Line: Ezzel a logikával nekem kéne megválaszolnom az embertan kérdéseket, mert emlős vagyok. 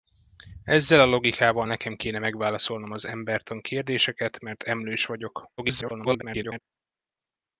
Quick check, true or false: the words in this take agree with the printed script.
false